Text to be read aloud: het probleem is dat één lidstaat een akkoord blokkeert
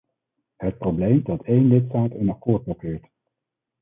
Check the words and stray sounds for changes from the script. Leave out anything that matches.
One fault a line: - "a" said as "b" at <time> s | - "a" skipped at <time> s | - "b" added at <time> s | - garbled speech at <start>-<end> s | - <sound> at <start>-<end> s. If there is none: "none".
- "is" skipped at 1.2 s